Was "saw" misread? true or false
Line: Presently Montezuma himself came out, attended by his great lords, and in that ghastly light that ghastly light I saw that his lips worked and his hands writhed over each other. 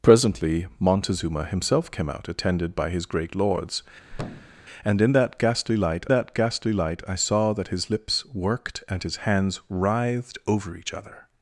false